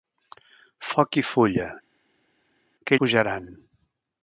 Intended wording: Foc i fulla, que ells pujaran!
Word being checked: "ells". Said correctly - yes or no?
no